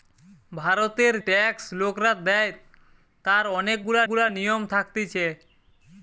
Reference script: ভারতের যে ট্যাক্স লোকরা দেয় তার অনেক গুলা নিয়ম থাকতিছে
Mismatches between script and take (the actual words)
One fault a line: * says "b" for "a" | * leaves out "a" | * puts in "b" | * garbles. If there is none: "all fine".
* leaves out "যে"
* puts in "গুলা"